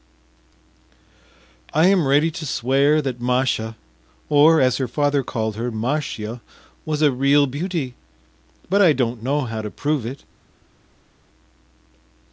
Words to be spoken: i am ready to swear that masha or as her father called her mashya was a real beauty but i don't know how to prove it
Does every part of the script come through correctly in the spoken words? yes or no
yes